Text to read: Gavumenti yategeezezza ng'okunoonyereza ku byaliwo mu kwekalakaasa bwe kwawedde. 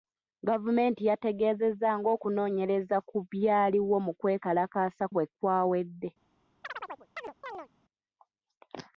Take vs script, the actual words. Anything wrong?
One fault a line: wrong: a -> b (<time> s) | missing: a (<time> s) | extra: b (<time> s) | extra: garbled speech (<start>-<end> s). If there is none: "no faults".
no faults